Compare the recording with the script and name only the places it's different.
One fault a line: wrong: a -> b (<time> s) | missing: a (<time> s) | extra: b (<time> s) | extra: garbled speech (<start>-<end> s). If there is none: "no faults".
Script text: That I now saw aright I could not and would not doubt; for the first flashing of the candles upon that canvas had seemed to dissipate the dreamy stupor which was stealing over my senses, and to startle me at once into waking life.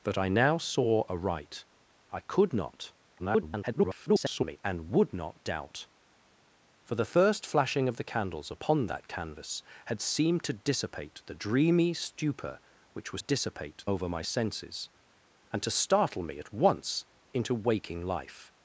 extra: garbled speech (3.2-4.6 s)
wrong: stealing -> dissipate (13.2 s)